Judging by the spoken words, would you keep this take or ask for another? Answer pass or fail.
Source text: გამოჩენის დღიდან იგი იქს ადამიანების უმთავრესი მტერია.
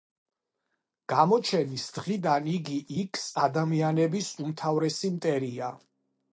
pass